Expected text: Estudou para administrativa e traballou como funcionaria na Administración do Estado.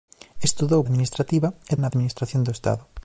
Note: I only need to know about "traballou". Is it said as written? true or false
false